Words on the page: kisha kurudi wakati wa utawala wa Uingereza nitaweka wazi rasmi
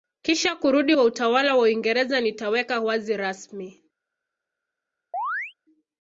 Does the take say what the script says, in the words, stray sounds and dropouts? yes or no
no